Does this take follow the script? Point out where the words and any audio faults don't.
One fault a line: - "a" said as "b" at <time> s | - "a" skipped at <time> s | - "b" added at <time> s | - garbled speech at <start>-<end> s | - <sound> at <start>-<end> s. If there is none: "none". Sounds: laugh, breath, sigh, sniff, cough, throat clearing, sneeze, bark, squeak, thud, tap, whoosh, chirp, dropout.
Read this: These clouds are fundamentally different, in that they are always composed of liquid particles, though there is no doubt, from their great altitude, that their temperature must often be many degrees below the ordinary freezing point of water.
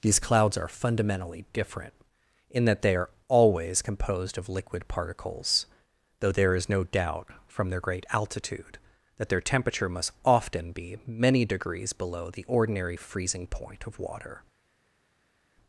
none